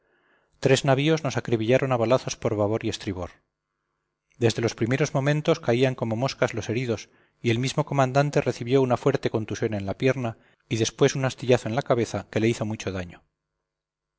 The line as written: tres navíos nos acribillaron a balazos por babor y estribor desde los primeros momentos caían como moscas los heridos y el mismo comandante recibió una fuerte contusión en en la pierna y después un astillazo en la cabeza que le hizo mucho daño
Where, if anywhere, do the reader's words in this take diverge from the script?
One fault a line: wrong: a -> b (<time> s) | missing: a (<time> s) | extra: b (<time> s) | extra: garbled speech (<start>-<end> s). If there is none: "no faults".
missing: en (9.9 s)